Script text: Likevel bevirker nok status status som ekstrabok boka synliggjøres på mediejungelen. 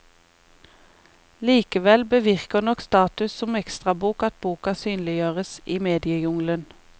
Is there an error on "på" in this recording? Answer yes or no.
yes